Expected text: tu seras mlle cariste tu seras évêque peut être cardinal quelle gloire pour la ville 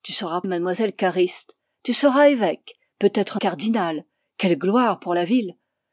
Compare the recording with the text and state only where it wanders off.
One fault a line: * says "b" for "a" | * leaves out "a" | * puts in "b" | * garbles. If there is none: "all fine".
all fine